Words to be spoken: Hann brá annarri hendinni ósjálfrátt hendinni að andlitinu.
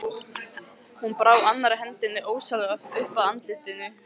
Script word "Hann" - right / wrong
wrong